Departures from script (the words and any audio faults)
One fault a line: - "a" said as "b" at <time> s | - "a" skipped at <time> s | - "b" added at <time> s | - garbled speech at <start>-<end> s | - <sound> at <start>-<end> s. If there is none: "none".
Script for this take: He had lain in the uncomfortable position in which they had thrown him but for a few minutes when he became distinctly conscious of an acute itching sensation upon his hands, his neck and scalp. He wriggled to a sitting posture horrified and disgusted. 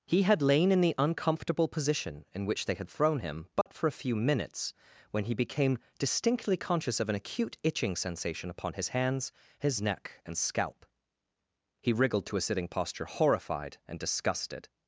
- dropout at 3.6-3.7 s